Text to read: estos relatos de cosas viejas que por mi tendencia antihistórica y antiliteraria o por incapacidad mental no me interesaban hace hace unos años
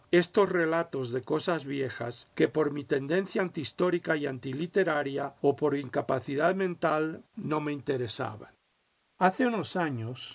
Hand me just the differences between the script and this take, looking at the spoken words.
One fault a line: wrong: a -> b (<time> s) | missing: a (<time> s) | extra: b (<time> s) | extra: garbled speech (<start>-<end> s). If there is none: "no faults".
missing: hace (9.5 s)